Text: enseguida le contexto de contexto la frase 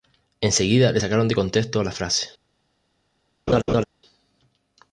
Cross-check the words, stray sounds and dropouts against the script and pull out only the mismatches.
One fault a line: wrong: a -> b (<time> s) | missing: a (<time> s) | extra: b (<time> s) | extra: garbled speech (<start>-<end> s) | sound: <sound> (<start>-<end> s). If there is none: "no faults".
wrong: contexto -> sacaron (1.0 s)
sound: laugh (3.5-3.8 s)